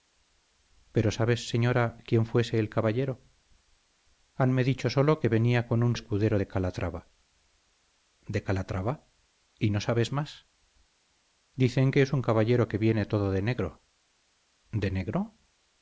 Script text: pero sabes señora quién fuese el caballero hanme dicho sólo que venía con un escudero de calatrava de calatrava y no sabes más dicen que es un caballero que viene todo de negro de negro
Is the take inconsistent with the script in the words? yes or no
no